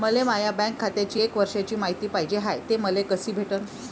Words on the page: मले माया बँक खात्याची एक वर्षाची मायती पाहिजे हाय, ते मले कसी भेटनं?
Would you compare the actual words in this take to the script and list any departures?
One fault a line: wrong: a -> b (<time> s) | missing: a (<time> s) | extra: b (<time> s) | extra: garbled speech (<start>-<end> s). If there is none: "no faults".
no faults